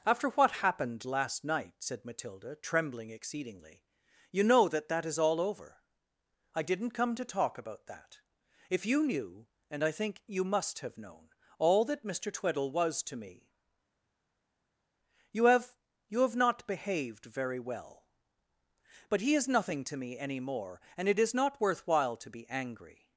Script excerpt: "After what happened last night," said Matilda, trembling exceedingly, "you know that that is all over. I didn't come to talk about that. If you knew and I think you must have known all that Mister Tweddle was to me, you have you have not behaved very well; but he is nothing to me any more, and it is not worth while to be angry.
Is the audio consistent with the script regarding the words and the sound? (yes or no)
yes